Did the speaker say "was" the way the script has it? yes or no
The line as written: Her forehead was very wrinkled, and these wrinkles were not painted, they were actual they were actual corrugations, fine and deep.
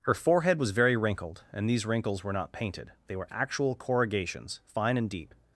yes